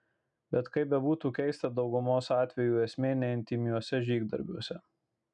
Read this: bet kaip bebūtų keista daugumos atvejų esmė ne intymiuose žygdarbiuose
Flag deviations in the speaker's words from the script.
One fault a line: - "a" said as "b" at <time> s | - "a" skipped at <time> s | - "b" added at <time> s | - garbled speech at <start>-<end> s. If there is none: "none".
none